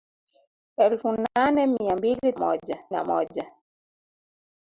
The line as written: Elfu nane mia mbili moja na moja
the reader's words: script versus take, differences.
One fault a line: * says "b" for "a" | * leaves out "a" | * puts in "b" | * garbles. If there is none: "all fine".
all fine